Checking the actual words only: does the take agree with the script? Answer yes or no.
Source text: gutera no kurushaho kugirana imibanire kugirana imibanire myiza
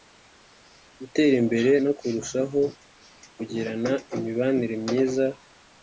no